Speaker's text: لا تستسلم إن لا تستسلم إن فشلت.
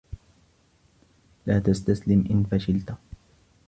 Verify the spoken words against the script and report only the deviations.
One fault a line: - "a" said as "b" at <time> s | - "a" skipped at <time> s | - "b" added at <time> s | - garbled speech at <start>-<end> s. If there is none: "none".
- "لا تستسلم إن" skipped at 2.4 s